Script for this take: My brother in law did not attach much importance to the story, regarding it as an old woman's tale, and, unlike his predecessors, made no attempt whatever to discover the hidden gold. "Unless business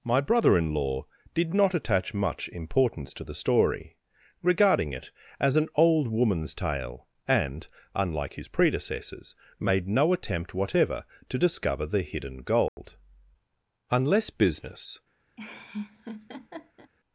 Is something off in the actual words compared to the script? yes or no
no